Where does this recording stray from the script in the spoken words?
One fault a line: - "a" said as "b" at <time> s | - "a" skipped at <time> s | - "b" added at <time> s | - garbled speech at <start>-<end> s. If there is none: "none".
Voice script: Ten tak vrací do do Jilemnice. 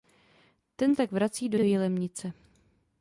none